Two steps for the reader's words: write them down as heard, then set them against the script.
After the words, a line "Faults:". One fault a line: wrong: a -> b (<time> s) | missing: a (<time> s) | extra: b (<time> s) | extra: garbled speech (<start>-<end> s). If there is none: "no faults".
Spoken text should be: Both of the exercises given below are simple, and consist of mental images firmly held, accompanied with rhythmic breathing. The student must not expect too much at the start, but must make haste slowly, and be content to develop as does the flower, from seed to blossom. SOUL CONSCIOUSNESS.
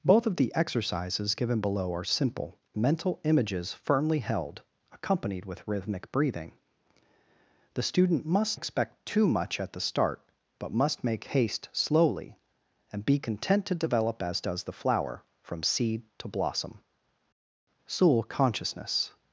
Both of the exercises given below are simple, mental images firmly held, accompanied with rhythmic breathing. The student must expect too much at the start, but must make haste slowly, and be content to develop as does the flower, from seed to blossom. SOUL CONSCIOUSNESS.
Faults:
missing: and consist of (2.6 s)
missing: not (8.6 s)